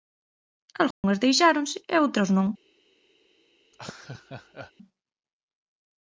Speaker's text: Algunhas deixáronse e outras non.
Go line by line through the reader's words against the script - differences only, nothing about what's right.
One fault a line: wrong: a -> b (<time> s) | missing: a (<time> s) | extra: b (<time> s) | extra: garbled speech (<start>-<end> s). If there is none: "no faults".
no faults